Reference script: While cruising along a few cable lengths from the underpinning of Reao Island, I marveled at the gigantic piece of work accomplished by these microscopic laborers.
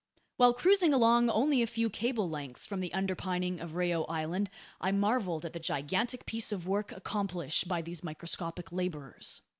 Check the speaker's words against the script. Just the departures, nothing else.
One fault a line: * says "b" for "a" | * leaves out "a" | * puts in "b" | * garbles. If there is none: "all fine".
* puts in "only"